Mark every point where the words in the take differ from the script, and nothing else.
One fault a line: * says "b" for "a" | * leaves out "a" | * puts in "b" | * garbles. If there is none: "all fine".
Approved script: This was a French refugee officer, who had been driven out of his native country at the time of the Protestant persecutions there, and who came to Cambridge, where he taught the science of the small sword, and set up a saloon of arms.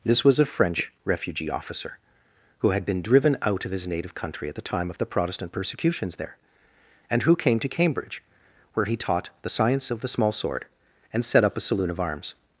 all fine